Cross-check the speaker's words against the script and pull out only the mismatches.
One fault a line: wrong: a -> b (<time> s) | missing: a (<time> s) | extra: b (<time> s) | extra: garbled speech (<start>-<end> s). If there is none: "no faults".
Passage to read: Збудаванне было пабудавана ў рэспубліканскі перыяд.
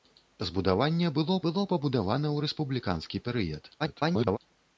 extra: было (1.4 s)
extra: garbled speech (3.8-4.4 s)